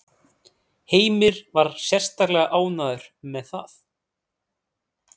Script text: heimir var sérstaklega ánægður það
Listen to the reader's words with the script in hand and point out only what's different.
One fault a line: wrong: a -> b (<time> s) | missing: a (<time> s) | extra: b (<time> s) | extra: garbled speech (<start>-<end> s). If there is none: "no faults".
extra: með (3.4 s)